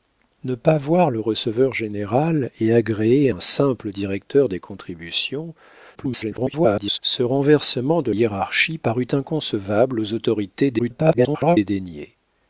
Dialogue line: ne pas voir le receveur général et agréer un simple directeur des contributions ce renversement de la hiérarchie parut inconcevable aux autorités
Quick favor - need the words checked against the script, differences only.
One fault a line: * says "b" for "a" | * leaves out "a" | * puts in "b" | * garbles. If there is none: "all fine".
* garbles
* leaves out "la"
* garbles